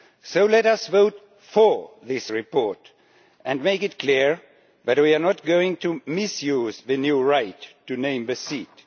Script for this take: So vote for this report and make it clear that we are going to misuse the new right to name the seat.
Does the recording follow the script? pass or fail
fail